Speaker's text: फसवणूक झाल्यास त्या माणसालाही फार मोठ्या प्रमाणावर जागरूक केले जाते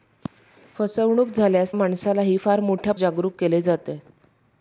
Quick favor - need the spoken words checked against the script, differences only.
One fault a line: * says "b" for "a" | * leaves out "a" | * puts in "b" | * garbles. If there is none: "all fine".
* leaves out "त्या"
* leaves out "प्रमाणावर"